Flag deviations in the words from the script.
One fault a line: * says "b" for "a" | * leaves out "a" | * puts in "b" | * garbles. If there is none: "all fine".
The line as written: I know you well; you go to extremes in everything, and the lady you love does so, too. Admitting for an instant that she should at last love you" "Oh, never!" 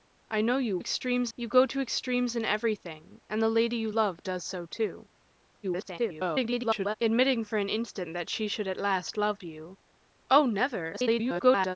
* says "extremes" for "well"
* garbles
* garbles